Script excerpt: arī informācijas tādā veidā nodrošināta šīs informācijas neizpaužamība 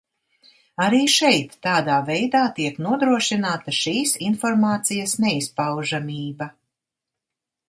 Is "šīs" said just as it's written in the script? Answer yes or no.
yes